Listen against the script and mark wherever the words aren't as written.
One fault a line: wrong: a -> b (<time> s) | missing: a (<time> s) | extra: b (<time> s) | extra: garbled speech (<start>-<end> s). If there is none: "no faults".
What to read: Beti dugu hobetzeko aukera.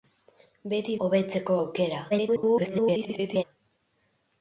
missing: dugu (0.9 s)
extra: garbled speech (2.1-3.4 s)